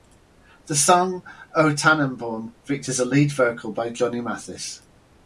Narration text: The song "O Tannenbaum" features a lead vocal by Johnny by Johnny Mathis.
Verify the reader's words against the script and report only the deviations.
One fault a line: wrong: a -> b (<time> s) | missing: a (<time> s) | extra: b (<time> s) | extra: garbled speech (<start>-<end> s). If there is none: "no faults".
missing: by Johnny (4.2 s)